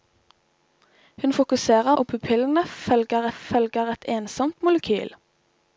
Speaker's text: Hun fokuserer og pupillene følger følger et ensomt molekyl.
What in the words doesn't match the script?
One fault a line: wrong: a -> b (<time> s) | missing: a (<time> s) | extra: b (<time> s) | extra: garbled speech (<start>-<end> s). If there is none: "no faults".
no faults